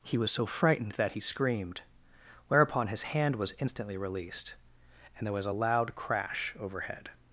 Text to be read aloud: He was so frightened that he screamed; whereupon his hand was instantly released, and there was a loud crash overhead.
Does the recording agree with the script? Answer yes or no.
yes